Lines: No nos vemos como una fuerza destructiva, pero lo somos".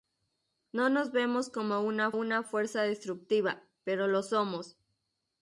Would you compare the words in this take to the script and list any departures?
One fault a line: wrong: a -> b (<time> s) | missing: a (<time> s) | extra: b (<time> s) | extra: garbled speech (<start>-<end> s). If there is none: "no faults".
extra: una (2.1 s)